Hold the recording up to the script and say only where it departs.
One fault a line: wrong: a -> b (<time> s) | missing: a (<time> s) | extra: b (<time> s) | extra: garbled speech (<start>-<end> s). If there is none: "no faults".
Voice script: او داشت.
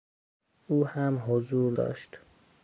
extra: هم حضور (0.9 s)